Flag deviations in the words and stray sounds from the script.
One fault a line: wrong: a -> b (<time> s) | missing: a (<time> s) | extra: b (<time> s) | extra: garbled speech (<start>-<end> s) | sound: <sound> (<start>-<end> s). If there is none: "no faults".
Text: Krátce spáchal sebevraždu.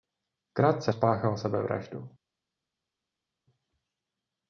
no faults